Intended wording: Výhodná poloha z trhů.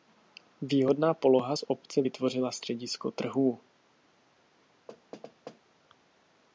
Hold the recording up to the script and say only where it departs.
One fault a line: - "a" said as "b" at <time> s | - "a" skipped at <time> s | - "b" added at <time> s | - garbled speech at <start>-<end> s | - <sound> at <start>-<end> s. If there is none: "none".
- "obce vytvořila středisko" added at 1.7 s
- thud at 4.9-5.6 s